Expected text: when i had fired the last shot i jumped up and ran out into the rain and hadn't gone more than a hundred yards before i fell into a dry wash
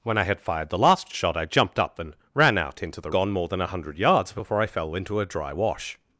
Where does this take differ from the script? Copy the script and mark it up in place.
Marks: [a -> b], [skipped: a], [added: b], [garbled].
when i had fired the last shot i jumped up and ran out into the [skipped: rain and hadn't] gone more than a hundred yards before i fell into a dry wash